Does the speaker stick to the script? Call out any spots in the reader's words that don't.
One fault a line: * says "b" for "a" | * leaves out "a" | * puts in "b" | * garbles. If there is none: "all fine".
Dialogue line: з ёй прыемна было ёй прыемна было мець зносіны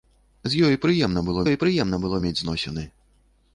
all fine